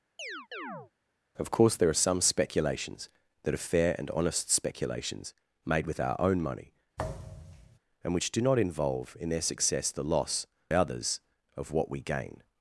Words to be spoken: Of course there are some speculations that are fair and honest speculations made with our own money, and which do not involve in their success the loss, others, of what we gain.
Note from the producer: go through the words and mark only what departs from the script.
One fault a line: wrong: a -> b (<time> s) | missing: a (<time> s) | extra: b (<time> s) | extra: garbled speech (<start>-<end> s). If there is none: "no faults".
no faults